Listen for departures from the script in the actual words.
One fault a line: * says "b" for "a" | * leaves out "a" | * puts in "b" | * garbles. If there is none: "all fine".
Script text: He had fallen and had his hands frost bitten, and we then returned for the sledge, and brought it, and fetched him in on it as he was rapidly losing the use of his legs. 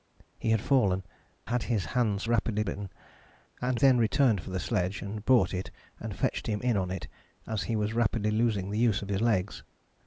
* leaves out "and"
* says "rapidly" for "frost"
* leaves out "we"